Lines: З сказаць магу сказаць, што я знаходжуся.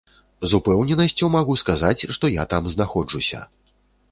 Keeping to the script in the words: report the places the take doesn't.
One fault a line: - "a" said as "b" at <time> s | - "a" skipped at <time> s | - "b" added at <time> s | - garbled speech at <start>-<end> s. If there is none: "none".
- "сказаць" said as "упэўненасцю" at 0.6 s
- "там" added at 2.5 s